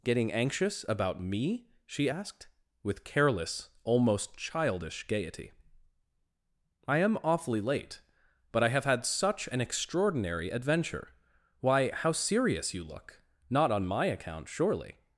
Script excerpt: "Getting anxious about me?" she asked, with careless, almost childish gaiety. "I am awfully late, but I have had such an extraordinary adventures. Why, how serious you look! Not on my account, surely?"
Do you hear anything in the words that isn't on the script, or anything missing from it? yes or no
yes